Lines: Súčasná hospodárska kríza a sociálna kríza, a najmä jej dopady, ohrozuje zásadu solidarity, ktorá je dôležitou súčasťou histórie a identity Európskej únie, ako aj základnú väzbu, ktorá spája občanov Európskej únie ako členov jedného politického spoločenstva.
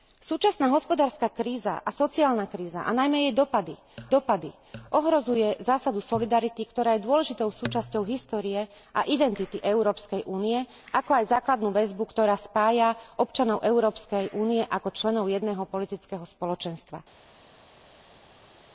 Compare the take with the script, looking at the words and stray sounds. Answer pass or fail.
fail